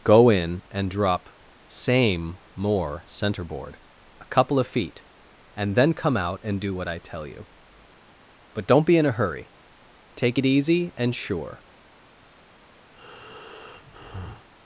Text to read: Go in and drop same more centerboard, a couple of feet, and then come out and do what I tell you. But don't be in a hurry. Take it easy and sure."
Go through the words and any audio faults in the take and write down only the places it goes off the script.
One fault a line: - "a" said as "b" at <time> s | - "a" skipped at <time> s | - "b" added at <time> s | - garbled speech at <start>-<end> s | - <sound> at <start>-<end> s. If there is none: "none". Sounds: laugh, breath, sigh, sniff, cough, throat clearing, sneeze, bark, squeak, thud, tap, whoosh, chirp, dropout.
- breath at 12.9-14.5 s